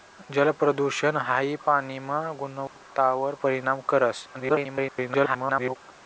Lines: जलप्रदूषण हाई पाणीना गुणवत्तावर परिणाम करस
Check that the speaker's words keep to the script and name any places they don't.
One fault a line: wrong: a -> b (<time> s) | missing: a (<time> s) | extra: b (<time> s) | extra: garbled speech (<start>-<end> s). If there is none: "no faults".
extra: garbled speech (4.3-5.8 s)